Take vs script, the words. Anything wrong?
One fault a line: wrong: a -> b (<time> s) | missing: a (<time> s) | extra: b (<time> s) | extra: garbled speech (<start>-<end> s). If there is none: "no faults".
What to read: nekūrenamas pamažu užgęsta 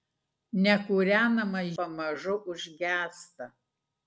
no faults